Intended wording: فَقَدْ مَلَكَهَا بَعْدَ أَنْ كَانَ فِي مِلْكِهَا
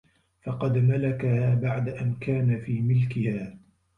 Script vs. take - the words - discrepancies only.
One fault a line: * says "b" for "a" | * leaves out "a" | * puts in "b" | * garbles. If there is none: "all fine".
all fine